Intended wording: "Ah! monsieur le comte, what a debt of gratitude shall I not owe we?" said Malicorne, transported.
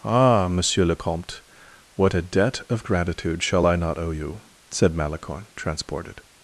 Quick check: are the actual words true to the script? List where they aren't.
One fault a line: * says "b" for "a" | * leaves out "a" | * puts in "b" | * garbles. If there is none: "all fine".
* says "you" for "we"